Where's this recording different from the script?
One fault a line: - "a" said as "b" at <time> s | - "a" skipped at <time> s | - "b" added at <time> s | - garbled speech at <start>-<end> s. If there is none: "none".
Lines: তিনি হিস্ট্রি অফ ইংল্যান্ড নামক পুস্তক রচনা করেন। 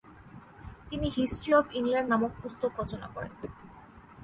none